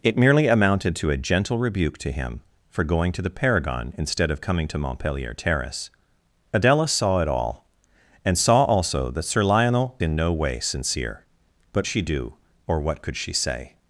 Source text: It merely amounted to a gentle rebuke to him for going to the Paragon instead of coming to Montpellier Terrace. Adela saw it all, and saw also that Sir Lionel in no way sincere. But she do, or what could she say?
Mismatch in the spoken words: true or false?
false